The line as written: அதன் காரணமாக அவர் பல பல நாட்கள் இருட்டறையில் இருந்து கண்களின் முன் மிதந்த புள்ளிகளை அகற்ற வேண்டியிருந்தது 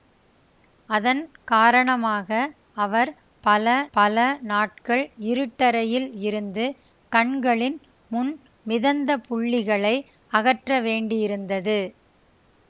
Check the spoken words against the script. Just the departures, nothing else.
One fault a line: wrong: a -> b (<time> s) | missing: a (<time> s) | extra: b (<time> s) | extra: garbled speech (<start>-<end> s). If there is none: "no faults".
no faults